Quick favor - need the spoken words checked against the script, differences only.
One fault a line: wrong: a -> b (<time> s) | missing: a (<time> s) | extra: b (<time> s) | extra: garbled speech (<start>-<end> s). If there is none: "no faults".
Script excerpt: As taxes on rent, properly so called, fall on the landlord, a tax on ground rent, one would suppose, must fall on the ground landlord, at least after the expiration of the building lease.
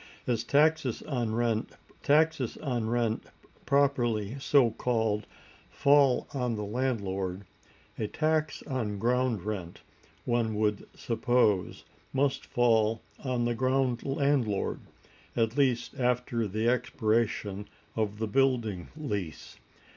extra: taxes on rent (2.0 s)